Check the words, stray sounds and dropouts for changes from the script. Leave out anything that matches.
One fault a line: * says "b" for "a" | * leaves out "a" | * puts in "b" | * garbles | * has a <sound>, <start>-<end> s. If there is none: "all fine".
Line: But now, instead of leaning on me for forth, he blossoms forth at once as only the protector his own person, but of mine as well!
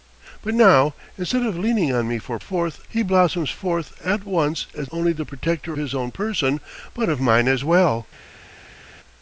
all fine